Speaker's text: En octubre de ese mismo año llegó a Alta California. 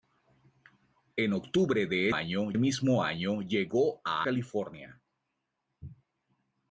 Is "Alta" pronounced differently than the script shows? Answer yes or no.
yes